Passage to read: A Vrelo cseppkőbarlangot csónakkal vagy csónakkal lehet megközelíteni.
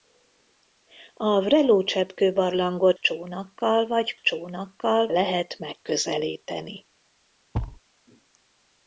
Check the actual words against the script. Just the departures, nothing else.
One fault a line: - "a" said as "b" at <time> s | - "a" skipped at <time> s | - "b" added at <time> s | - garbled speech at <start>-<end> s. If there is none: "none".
none